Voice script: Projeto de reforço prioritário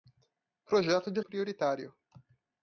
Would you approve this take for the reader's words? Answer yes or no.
no